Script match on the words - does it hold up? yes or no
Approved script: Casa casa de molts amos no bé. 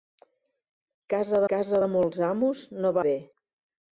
yes